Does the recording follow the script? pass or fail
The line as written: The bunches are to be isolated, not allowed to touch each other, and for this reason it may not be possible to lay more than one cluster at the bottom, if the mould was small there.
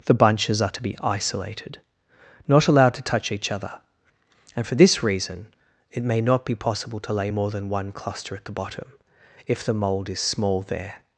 fail